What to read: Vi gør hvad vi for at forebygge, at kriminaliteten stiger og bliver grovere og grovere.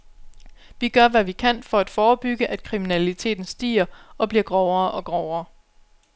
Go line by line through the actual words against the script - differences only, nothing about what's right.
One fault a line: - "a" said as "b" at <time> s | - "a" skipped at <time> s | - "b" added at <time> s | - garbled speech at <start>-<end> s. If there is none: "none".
- "kan" added at 1.3 s